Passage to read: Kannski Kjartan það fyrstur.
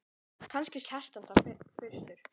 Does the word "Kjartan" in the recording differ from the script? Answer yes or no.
no